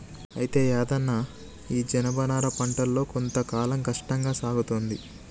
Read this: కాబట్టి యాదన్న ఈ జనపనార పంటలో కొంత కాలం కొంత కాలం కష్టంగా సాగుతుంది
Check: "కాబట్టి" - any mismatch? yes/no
yes